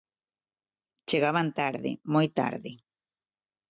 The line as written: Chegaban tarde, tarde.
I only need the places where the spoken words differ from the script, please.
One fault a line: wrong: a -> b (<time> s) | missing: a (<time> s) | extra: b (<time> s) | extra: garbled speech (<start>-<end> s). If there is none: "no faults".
extra: moi (2.1 s)